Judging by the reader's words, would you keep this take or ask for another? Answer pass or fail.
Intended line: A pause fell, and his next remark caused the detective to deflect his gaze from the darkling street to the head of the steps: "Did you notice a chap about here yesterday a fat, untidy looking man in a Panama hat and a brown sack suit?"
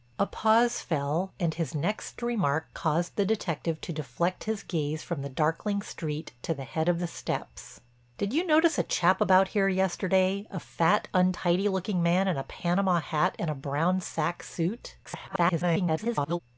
fail